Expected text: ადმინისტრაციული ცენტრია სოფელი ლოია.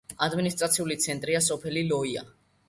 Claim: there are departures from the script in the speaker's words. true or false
false